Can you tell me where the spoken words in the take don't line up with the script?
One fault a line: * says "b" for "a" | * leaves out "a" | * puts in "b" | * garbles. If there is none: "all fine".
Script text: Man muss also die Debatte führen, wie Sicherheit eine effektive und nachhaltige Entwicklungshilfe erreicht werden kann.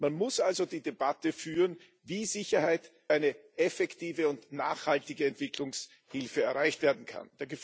all fine